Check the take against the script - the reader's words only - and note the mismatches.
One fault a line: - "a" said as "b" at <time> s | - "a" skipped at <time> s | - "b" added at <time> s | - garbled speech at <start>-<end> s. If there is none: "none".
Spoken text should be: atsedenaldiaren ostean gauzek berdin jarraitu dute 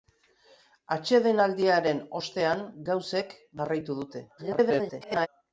- "berdin" skipped at 3.4 s
- garbled speech at 4.4-5.3 s